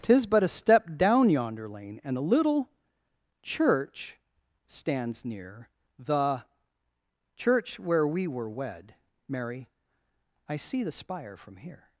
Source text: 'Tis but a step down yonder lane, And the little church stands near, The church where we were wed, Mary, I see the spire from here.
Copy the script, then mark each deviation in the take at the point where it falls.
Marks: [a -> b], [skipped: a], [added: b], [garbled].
'Tis but a step down yonder lane, And [the -> a] little church stands near, The church where we were wed, Mary, I see the spire from here.